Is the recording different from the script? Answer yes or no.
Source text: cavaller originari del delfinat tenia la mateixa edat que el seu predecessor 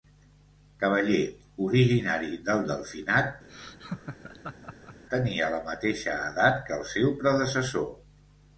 no